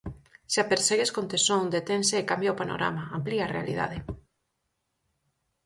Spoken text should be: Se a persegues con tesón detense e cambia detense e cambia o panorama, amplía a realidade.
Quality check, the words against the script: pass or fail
fail